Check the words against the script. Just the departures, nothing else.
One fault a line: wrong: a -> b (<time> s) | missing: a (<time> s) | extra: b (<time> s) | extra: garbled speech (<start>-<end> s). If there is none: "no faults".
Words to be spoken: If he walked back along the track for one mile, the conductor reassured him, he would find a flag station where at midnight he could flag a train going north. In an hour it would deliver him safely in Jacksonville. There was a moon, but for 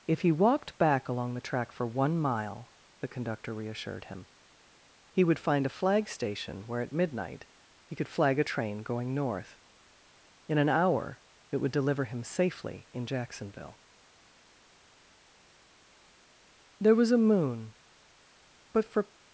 no faults